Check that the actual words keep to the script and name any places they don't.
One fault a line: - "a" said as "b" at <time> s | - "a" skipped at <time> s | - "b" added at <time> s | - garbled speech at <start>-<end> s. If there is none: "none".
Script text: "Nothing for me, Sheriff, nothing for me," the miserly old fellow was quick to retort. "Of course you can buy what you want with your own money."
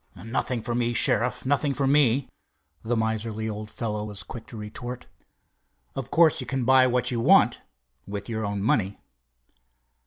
none